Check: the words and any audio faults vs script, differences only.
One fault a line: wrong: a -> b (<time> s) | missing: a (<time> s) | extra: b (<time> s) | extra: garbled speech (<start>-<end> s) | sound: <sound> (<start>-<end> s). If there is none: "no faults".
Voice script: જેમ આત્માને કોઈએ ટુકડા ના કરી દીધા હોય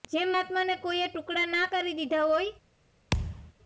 sound: thud (3.1-3.5 s)